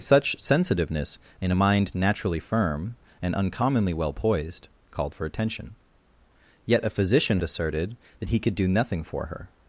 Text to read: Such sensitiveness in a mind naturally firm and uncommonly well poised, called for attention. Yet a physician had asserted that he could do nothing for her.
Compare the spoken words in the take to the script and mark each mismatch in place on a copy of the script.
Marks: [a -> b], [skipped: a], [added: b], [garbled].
Such sensitiveness in a mind naturally firm and uncommonly well poised, called for attention. Yet a physician [skipped: had] asserted that he could do nothing for her.